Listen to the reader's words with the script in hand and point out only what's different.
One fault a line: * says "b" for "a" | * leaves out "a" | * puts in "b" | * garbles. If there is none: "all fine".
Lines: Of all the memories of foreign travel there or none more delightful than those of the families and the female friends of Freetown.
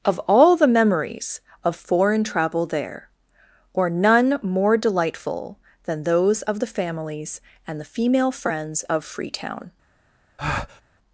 all fine